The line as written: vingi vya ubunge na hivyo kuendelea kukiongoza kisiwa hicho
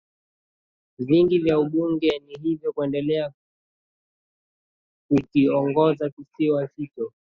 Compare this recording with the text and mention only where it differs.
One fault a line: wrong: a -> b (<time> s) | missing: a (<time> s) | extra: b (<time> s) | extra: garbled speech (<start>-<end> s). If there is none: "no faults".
no faults